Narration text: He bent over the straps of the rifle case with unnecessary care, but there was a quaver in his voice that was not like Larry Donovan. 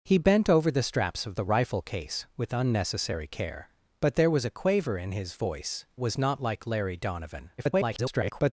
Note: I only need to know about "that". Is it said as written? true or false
false